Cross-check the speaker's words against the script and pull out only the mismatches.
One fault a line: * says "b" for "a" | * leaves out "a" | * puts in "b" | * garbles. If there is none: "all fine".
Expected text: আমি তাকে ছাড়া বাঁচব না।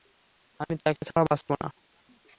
all fine